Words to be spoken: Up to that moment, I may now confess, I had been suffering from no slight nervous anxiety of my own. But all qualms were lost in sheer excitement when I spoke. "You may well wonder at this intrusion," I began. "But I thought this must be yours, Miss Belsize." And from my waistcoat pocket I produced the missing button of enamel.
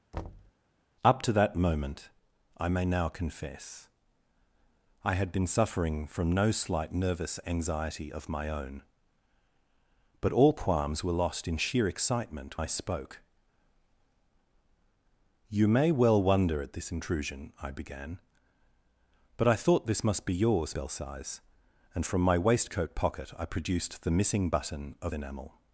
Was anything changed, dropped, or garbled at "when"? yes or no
yes